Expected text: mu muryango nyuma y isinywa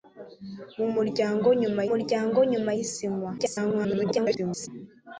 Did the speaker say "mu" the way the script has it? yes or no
yes